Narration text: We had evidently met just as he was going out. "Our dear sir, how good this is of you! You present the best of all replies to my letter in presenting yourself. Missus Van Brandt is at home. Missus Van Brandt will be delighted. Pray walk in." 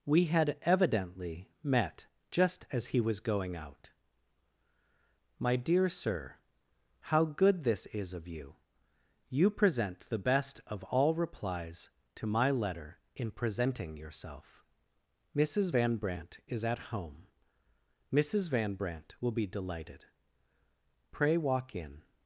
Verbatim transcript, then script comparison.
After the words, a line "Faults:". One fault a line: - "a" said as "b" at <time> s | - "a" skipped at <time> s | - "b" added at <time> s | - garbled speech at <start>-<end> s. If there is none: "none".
We had evidently met just as he was going out. "My dear sir, how good this is of you! You present the best of all replies to my letter in presenting yourself. Missus Van Brandt is at home. Missus Van Brandt will be delighted. Pray walk in."
Faults:
- "Our" said as "My" at 5.4 s